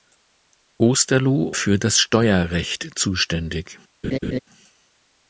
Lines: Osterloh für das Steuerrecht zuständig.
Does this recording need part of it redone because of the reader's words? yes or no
no